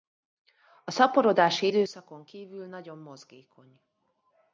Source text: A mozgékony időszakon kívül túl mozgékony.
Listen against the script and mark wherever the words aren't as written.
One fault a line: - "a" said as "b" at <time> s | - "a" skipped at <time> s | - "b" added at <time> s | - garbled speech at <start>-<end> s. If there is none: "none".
- "mozgékony" said as "szaporodási" at 0.9 s
- "túl" said as "nagyon" at 2.7 s